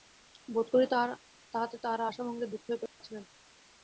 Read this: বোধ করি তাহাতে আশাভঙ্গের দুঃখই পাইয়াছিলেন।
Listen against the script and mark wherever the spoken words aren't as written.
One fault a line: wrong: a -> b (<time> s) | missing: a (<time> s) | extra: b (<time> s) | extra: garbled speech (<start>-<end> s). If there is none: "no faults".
extra: তাঁহারা (1.8 s)